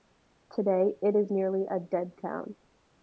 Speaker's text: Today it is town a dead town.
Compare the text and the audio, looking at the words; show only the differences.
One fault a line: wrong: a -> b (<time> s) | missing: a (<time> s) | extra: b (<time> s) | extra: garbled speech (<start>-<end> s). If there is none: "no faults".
wrong: town -> nearly (1.3 s)